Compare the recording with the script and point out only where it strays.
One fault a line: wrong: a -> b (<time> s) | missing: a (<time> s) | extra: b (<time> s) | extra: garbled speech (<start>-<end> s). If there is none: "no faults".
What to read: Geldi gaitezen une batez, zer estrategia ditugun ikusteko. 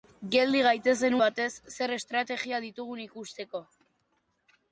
missing: une (1.2 s)